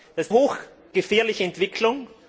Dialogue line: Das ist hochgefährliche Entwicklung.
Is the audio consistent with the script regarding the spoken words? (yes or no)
yes